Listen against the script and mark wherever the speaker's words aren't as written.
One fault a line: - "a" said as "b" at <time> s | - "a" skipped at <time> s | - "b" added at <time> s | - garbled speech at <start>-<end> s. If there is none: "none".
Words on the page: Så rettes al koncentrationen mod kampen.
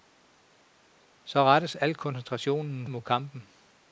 none